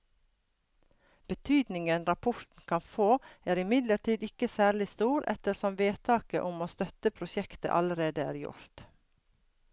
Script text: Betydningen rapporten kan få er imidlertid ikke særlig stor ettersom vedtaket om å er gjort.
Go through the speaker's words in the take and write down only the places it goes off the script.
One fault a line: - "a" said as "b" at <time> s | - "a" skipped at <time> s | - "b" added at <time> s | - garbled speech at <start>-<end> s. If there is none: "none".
- "støtte prosjektet allerede" added at 6.8 s